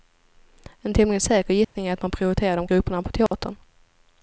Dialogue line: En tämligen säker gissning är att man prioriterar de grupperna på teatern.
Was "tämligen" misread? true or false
false